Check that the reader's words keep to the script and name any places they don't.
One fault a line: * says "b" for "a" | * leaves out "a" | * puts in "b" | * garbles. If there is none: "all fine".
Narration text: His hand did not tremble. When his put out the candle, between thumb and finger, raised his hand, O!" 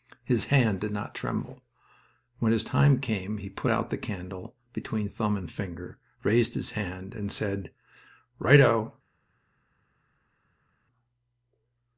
* puts in "time came he"
* puts in "and said Right"